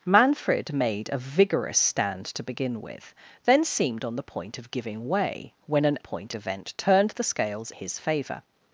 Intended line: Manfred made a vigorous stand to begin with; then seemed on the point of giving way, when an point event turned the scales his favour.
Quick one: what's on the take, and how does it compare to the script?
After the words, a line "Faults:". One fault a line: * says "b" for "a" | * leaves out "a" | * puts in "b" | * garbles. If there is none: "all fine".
Manfred made a vigorous stand to begin with; then seemed on the point of giving way, when an point event turned the scales his favour.
Faults:
all fine